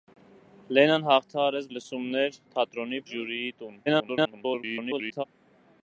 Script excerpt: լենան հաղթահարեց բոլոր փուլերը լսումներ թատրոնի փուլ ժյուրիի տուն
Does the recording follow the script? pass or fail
fail